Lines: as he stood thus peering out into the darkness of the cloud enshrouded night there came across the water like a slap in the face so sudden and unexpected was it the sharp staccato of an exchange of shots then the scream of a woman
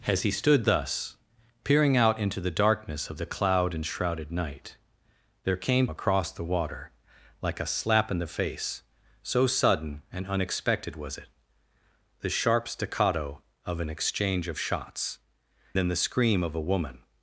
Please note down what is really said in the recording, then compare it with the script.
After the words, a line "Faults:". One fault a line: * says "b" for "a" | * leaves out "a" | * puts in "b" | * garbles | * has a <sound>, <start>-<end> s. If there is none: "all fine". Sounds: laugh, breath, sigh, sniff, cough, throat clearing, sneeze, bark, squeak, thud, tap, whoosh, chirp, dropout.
as he stood thus peering out into the darkness of the cloud enshrouded night there came across the water like a slap in the face so sudden and unexpected was it the sharp staccato of an exchange of shots then the scream of a woman
Faults:
all fine